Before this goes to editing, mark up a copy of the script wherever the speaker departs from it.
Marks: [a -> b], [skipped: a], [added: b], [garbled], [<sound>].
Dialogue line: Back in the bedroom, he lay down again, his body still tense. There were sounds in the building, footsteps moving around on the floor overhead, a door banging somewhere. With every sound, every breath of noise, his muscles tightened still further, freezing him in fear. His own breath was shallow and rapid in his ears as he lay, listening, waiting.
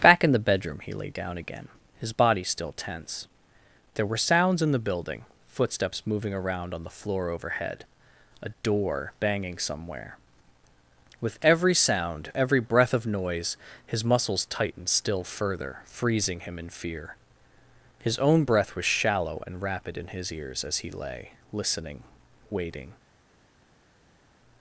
Back in the bedroom, he lay down again, his body still tense. There were sounds in the building, footsteps moving around on the floor overhead, a door banging somewhere. With every sound, every breath of noise, his muscles tightened still further, freezing him in fear. His own breath was shallow and rapid in his ears as he lay, listening, waiting.